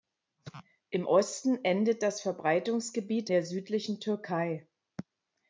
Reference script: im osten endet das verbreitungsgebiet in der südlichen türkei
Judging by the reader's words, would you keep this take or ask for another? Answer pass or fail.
fail